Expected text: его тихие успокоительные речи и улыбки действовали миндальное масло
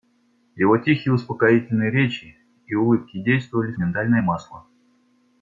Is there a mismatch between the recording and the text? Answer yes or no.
no